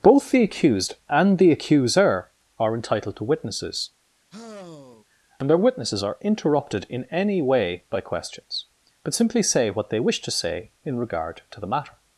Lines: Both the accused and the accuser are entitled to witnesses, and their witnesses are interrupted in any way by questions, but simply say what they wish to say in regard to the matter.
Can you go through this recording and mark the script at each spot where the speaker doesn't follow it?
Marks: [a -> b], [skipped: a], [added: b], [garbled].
Both the accused and the accuser are entitled to witnesses, and their witnesses are interrupted in any way by questions, but simply say what they wish to say in regard to the matter.